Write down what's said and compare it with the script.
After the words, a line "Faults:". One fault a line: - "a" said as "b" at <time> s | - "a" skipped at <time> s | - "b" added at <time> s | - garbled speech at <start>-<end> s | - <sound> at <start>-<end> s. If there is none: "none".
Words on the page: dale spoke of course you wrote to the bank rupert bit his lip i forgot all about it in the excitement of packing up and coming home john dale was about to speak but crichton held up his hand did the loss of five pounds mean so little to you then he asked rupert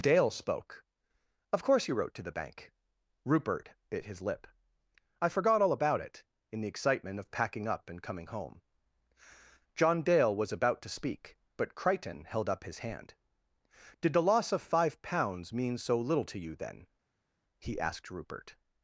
dale spoke of course you wrote to the bank rupert bit his lip i forgot all about it in the excitement of packing up and coming home john dale was about to speak but crichton held up his hand did the loss of five pounds mean so little to you then he asked rupert
Faults:
none